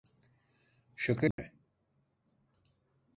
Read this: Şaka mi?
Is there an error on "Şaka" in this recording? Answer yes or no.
no